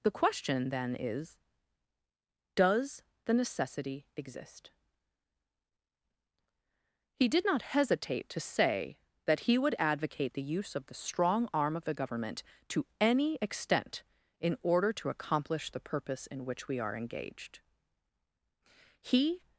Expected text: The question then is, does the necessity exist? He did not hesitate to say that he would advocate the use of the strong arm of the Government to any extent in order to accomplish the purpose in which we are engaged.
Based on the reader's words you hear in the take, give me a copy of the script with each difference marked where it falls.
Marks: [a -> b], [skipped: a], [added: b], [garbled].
The question then is, does the necessity exist? He did not hesitate to say that he would advocate the use of the strong arm of the Government to any extent in order to accomplish the purpose in which we are engaged. [added: He]